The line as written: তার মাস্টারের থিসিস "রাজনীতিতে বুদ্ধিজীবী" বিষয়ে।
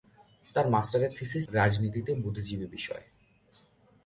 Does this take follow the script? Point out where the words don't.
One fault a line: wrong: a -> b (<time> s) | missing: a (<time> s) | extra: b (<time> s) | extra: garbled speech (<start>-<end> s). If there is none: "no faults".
no faults